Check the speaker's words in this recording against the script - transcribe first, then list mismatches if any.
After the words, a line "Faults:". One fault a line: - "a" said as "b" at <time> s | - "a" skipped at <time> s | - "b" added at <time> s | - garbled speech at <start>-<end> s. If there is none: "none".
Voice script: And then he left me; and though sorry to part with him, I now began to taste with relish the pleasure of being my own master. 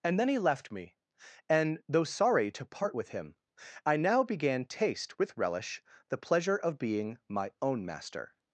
And then he left me; and though sorry to part with him, I now began taste with relish the pleasure of being my own master.
Faults:
- "to" skipped at 4.7 s